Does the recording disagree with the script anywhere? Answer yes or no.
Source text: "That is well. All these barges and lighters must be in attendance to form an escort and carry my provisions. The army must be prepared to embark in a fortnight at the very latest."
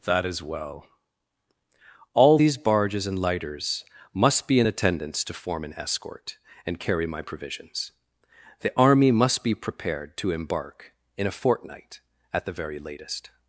no